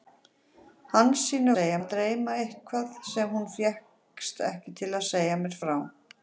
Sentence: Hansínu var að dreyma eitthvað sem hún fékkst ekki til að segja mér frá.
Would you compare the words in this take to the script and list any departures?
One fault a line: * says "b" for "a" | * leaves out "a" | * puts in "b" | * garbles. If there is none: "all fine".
* says "segja" for "var"